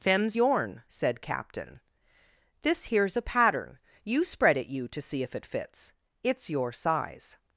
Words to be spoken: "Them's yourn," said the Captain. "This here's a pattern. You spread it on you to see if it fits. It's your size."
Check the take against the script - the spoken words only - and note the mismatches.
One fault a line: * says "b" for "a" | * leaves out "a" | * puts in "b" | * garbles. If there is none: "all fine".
* leaves out "the"
* leaves out "on"